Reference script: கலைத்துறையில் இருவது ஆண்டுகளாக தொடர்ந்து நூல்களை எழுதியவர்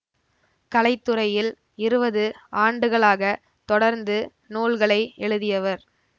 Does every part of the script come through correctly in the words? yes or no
yes